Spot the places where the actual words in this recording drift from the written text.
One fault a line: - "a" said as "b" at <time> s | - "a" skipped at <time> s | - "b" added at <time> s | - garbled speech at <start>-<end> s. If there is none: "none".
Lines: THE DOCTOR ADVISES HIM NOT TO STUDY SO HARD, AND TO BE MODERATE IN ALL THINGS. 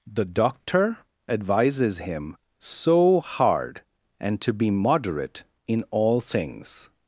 - "NOT TO STUDY" skipped at 2.4 s